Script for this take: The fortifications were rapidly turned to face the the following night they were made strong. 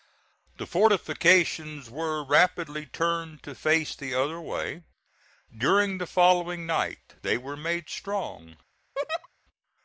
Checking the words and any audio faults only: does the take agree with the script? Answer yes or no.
no